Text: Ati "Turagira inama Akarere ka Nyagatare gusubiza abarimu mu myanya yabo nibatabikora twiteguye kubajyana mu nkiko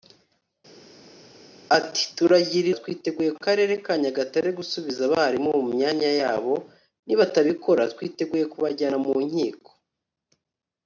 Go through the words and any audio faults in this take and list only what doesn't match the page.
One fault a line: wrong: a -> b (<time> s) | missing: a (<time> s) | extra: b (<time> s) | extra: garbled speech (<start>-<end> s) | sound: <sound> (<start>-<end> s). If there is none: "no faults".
wrong: inama -> twiteguye (2.8 s)